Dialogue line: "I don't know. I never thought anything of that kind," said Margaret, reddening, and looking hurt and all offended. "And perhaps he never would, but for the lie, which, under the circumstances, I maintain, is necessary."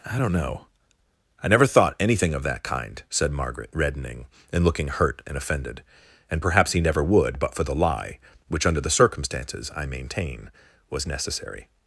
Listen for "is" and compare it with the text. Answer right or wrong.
wrong